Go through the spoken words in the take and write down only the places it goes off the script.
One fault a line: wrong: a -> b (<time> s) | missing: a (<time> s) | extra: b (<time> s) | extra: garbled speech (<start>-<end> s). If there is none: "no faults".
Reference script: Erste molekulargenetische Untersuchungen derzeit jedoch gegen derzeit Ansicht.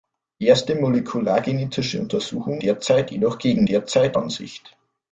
no faults